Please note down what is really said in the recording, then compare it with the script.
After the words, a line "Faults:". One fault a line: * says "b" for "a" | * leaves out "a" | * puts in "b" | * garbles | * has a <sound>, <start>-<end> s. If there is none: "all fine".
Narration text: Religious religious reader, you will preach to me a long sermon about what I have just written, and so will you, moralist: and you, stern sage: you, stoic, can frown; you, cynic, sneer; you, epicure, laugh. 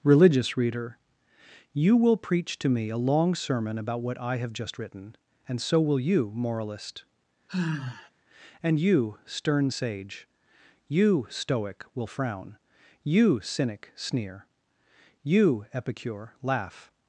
Religious reader, you will preach to me a long sermon about what I have just written, and so will you, moralist: and you, stern sage: you, stoic, will frown; you, cynic, sneer; you, epicure, laugh.
Faults:
* leaves out "religious"
* has a sigh, 7.5-8.1 s
* says "will" for "can"